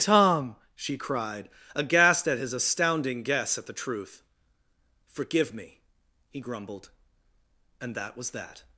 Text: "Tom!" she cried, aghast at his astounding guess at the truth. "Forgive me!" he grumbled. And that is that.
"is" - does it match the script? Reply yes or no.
no